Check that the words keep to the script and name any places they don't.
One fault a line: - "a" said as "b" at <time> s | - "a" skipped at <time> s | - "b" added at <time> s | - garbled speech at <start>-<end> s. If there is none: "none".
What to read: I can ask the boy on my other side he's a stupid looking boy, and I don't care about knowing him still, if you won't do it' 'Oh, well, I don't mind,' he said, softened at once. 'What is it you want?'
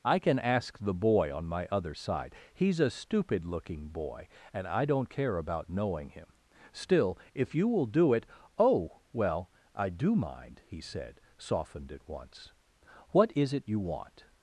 - "won't" said as "will" at 7.7 s
- "don't" said as "do" at 9.9 s